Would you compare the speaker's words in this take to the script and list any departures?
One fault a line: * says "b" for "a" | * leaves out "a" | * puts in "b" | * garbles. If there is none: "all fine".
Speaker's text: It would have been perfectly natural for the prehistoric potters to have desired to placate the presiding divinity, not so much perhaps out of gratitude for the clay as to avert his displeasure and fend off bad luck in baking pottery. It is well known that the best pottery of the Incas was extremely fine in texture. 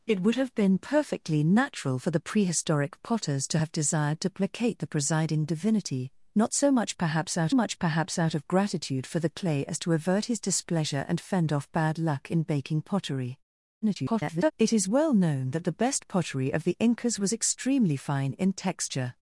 * puts in "much perhaps out"
* garbles